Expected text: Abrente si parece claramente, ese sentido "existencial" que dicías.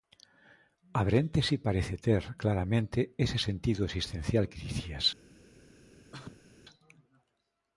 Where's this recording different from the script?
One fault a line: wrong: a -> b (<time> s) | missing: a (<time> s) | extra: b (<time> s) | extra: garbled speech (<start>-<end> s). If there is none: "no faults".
extra: ter (2.1 s)